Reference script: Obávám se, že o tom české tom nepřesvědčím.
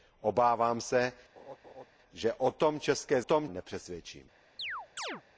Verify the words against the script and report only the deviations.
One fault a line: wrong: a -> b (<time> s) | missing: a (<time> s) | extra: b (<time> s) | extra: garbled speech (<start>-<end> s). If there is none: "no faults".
no faults